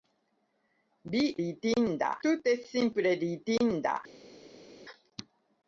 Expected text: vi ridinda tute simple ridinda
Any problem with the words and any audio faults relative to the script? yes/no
no